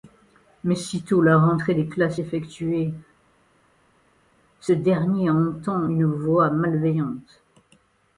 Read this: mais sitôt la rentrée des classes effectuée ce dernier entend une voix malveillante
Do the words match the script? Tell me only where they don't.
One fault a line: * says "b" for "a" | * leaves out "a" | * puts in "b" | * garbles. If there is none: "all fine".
all fine